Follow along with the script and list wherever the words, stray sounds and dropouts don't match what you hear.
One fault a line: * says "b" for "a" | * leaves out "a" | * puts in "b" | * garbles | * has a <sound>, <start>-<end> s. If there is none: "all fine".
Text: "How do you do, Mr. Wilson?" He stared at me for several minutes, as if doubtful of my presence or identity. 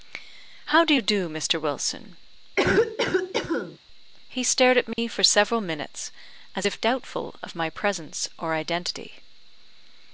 * has a cough, 2.6-3.8 s
* has a dropout, 4.9-5.0 s